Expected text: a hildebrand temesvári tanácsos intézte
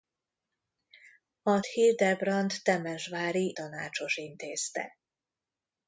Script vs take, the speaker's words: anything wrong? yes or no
no